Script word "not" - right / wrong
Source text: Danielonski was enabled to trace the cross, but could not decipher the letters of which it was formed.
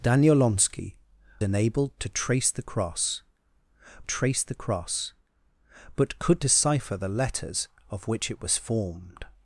wrong